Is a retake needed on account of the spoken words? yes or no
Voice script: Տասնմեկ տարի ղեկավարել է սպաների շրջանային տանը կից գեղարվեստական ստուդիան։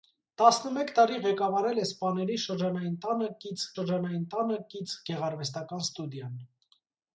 yes